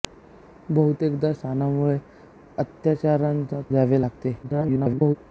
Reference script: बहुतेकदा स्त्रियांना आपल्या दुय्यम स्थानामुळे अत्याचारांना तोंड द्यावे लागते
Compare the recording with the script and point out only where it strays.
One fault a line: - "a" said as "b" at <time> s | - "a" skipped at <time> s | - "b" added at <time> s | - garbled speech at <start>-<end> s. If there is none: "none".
- "स्त्रियांना आपल्या दुय्यम" skipped at 1.3 s
- "तोंड" skipped at 3.6 s
- garbled speech at 4.4-5.2 s